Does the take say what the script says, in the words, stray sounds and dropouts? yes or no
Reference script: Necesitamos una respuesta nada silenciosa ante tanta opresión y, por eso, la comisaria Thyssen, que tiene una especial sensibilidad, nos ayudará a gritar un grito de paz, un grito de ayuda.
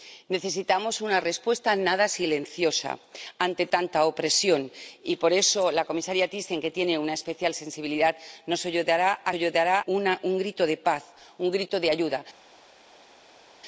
no